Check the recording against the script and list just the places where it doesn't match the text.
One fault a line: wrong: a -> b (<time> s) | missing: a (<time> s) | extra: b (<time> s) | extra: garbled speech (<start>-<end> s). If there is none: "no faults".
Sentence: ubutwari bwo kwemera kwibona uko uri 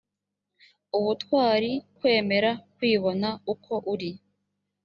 missing: bwo (1.7 s)